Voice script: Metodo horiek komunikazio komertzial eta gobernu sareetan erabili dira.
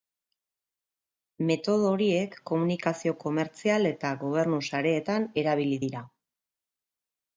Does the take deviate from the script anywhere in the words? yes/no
no